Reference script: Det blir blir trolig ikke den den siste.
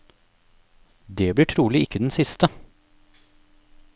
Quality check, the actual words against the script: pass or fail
fail